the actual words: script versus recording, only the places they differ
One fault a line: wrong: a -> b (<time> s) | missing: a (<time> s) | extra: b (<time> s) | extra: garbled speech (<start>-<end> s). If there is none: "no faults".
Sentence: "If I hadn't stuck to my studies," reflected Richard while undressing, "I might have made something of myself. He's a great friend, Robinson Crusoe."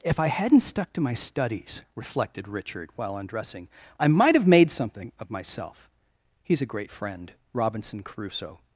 no faults